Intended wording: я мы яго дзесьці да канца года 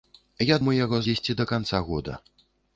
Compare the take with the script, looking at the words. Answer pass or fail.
pass